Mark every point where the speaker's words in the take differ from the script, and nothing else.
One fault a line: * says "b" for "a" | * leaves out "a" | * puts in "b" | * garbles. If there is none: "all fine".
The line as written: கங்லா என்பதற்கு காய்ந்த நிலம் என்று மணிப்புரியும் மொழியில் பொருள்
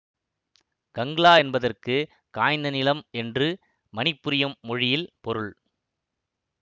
all fine